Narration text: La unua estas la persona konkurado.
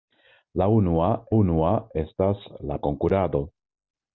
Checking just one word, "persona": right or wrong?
wrong